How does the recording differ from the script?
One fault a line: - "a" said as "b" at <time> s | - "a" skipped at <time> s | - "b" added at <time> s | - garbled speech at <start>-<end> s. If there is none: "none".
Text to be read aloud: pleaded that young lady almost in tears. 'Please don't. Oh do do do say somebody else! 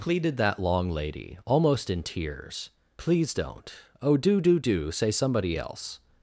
- "young" said as "long" at 0.6 s